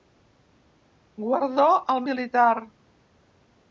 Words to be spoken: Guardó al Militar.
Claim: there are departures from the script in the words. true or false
false